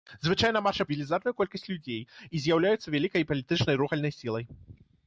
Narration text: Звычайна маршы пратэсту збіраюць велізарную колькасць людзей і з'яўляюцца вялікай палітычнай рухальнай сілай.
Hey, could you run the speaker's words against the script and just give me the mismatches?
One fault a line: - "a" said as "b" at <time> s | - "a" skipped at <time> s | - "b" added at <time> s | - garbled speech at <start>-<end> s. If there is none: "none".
- "пратэсту збіраюць" skipped at 0.8 s